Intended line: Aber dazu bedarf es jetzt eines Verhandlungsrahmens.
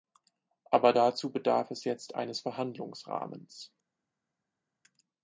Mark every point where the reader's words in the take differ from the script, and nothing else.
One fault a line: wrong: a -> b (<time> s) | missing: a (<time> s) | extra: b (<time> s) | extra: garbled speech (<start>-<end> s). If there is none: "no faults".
no faults